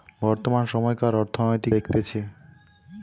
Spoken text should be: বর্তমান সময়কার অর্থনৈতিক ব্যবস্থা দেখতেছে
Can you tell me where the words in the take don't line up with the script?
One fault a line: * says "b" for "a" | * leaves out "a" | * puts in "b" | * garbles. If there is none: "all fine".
* leaves out "ব্যবস্থা"